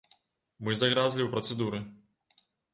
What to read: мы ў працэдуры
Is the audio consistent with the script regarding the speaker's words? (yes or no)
no